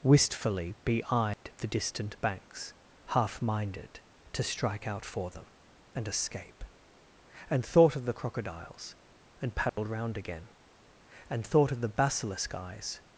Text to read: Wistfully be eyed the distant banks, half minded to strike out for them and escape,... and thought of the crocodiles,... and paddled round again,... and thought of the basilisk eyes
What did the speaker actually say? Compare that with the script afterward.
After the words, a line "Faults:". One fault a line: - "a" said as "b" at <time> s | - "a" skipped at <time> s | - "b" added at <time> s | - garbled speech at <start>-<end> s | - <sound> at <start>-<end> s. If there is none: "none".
Wistfully be eyed the distant banks, half minded to strike out for them and escape,... and thought of the crocodiles,... and paddled round again,... and thought of the basilisk eyes
Faults:
- dropout at 1.3-1.5 s
- dropout at 9.7-9.8 s